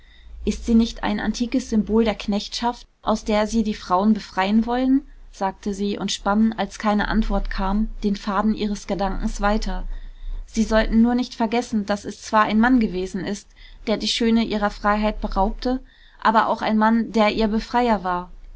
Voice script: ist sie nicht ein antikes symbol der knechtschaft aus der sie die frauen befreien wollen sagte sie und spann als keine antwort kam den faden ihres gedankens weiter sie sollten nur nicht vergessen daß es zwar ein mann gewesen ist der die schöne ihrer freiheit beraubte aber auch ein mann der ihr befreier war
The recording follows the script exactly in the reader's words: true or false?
true